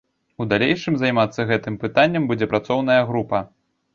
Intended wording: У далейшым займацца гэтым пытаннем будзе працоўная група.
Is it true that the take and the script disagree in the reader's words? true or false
false